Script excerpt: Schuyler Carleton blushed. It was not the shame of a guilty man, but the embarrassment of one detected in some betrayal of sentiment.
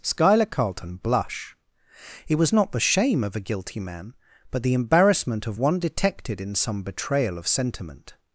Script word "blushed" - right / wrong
wrong